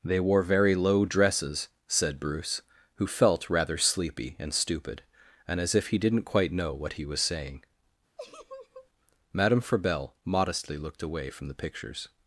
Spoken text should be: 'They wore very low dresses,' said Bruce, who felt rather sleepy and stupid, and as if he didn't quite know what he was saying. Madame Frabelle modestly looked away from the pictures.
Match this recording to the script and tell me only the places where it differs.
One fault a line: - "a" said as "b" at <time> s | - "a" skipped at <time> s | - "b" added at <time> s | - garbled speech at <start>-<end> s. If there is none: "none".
none